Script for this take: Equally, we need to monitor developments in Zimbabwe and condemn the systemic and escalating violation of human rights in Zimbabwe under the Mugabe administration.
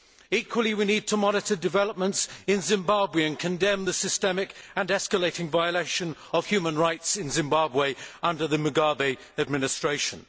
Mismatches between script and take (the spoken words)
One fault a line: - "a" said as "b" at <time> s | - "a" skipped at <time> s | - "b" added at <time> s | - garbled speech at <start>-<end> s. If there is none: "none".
none